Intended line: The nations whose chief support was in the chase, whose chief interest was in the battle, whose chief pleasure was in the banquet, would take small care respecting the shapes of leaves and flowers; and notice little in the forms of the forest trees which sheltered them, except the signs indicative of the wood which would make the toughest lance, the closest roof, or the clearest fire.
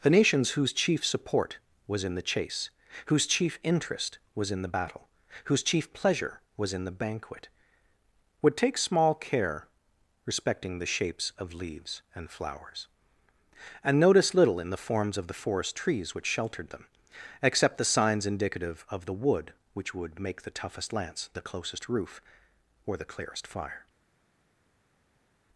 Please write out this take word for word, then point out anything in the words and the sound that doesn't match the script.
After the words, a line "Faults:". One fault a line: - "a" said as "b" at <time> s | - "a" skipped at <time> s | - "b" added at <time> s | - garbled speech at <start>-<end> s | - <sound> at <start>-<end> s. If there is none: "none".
The nations whose chief support was in the chase, whose chief interest was in the battle, whose chief pleasure was in the banquet, would take small care respecting the shapes of leaves and flowers; and notice little in the forms of the forest trees which sheltered them, except the signs indicative of the wood which would make the toughest lance, the closest roof, or the clearest fire.
Faults:
none